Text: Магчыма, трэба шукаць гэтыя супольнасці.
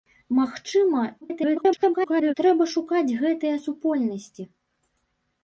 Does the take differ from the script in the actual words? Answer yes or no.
yes